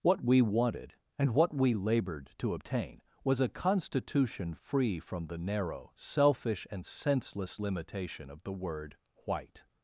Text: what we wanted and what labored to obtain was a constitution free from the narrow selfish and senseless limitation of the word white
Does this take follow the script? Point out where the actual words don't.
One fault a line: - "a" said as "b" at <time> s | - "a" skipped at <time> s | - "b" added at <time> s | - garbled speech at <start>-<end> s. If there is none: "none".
- "we" added at 1.6 s